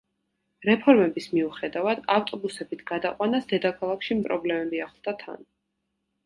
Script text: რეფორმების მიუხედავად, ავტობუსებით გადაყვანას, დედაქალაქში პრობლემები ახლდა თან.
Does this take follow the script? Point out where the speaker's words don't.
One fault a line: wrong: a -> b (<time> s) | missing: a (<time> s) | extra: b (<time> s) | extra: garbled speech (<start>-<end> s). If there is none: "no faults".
no faults